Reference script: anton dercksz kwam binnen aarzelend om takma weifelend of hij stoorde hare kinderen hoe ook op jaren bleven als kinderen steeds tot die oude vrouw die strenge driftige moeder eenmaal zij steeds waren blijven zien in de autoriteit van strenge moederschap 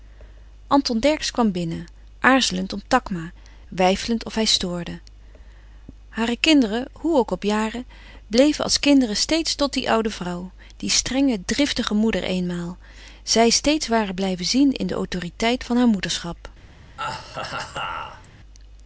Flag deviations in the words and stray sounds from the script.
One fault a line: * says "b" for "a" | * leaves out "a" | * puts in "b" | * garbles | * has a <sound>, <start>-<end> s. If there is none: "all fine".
* says "haar" for "strenge"
* has a laugh, 17.0-18.3 s